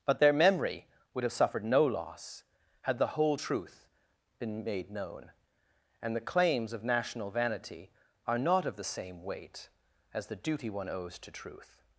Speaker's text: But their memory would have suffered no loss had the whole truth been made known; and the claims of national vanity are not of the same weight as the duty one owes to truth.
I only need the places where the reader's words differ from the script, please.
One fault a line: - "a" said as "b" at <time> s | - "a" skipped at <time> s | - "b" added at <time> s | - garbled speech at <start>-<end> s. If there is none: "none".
none